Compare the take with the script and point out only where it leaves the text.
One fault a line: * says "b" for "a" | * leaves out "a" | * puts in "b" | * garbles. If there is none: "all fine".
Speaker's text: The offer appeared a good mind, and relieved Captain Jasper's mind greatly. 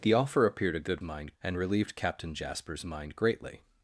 all fine